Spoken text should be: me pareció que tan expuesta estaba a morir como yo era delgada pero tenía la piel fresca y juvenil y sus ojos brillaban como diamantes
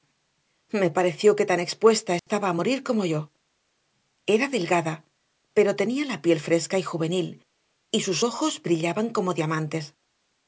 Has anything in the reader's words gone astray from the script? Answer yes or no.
no